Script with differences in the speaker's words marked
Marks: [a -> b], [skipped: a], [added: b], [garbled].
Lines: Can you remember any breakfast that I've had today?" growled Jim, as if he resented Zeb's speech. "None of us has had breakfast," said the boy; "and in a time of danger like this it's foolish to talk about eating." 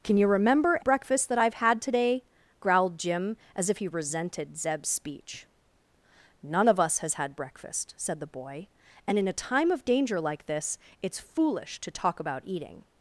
Can you remember [skipped: any] breakfast that I've had today?" growled Jim, as if he resented Zeb's speech. "None of us has had breakfast," said the boy; "and in a time of danger like this it's foolish to talk about eating."